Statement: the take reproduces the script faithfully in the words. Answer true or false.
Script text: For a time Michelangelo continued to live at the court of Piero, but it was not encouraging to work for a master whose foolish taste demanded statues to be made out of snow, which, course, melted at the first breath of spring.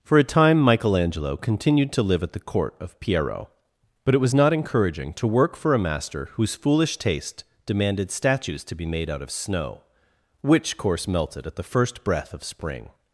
true